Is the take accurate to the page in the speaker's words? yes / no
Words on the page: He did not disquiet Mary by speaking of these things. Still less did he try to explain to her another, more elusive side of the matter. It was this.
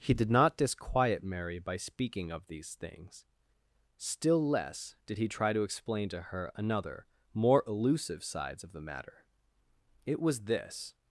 no